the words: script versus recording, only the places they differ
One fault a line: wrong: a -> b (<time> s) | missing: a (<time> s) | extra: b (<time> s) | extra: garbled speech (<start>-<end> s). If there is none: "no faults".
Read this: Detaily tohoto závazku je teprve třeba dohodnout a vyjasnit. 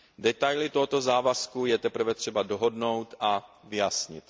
no faults